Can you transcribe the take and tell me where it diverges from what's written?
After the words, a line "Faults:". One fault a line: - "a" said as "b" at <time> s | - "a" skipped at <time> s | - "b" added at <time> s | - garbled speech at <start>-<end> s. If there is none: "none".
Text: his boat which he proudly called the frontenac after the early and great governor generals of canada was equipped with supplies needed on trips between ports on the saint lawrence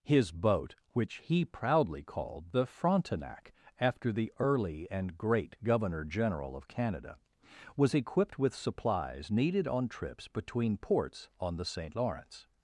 his boat which he proudly called the frontenac after the early and great governor general of canada was equipped with supplies needed on trips between ports on the saint lawrence
Faults:
- "generals" said as "general" at 6.1 s